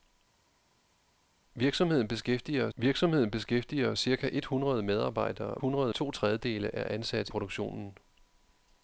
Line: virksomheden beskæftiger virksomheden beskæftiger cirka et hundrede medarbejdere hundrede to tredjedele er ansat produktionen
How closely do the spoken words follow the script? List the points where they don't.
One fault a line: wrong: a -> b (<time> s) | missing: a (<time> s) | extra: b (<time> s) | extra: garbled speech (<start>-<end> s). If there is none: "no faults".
no faults